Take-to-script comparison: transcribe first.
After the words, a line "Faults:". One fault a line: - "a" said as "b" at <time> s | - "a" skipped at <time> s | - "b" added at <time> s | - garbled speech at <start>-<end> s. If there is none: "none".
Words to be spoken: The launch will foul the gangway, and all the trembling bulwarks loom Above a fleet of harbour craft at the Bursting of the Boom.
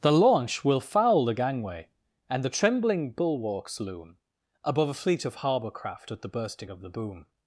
The launch will foul the gangway, and the trembling bulwarks loom Above a fleet of harbour craft at the Bursting of the Boom.
Faults:
- "all" skipped at 2.4 s